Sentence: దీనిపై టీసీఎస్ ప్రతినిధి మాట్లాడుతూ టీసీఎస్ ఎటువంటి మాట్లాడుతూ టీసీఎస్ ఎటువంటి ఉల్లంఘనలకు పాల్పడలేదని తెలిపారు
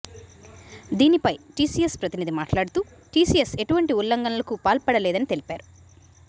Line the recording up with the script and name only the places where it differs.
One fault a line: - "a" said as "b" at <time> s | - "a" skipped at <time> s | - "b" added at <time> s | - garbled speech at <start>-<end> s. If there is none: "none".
- "మాట్లాడుతూ టీసీఎస్ ఎటువంటి" skipped at 3.9 s